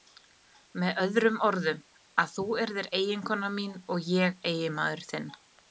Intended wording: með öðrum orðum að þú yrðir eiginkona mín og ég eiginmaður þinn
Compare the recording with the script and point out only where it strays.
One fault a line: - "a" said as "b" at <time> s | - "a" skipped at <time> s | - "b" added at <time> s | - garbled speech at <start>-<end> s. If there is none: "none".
none